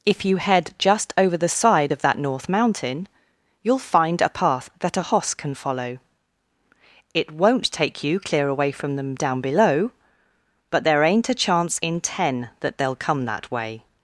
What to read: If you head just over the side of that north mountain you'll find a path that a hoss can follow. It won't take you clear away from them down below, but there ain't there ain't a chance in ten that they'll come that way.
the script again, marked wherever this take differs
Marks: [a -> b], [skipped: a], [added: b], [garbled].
If you head just over the side of that north mountain you'll find a path that a hoss can follow. It won't take you clear away from them down below, but there ain't [skipped: there ain't] a chance in ten that they'll come that way.